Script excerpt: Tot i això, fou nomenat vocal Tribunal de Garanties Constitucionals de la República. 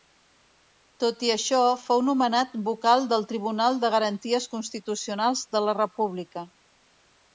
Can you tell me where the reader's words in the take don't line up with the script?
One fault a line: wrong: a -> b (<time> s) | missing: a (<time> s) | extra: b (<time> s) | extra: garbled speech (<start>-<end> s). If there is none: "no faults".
extra: del (3.1 s)